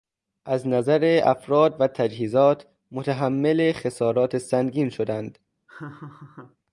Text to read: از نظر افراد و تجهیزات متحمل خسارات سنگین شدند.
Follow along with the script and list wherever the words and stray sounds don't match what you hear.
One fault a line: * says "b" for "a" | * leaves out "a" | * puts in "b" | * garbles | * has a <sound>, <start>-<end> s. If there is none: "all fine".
* has a laugh, 5.7-6.6 s